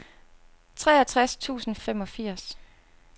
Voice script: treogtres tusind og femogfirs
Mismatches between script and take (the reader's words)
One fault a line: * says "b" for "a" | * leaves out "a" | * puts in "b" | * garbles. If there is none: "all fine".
all fine